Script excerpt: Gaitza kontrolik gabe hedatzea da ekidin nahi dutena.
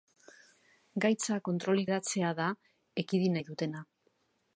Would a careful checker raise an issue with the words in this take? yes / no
yes